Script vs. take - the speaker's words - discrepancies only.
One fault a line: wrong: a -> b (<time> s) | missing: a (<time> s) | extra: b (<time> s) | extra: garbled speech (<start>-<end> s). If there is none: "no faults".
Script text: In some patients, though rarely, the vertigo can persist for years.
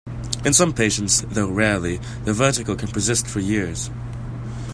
no faults